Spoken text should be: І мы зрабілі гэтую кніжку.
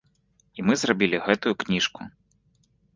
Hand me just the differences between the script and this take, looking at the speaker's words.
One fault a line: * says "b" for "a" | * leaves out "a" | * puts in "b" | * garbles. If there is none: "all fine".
all fine